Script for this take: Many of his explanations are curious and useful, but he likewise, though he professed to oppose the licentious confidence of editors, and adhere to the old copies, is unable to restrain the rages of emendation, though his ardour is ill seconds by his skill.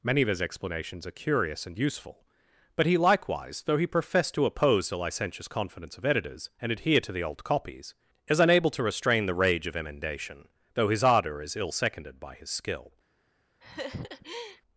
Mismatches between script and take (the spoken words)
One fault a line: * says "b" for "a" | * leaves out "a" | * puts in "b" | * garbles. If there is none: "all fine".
* says "rage" for "rages"
* says "seconded" for "seconds"